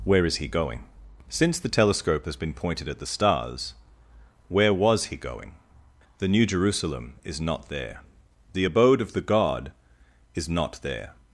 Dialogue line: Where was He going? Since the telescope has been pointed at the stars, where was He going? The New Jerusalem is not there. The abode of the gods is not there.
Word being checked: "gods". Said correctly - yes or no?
no